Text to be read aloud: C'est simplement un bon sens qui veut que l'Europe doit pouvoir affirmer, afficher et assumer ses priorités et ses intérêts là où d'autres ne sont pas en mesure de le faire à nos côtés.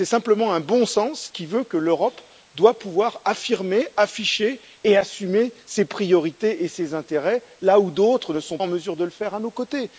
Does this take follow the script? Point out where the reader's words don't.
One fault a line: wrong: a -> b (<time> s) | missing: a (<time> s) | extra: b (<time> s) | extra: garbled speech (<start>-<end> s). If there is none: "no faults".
missing: pas (8.6 s)